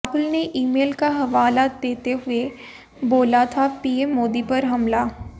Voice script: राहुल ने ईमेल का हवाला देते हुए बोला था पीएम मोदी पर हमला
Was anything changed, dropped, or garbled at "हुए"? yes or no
no